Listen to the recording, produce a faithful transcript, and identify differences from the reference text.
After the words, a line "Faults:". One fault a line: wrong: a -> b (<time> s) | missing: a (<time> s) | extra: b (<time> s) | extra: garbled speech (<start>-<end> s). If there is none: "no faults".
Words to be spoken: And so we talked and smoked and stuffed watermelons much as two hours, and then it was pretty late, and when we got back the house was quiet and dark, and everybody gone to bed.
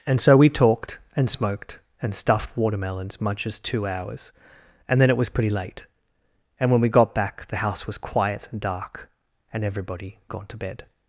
And so we talked and smoked and stuffed watermelons much as two hours, and then it was pretty late, and when we got back the house was quiet and dark, and everybody gone to bed.
Faults:
no faults